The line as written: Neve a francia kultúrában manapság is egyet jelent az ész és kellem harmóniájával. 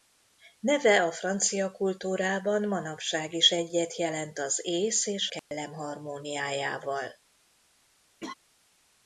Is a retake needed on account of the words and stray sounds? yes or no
yes